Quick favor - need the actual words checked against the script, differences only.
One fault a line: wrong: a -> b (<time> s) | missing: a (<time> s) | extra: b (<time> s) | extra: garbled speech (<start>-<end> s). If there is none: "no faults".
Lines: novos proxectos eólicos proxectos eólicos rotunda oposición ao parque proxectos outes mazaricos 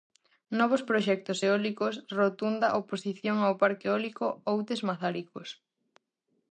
missing: proxectos eólicos (1.9 s)
wrong: proxectos -> eólico (3.9 s)